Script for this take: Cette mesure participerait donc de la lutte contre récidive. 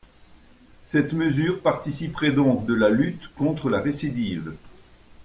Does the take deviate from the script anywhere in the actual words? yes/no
yes